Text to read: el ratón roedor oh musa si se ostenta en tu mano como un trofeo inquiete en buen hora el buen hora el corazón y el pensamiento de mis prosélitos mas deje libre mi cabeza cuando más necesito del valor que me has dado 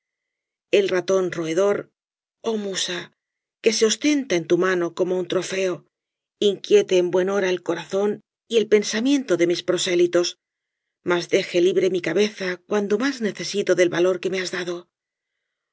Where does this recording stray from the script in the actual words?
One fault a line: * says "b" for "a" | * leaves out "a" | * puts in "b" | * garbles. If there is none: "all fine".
* says "que" for "si"
* leaves out "buen hora el"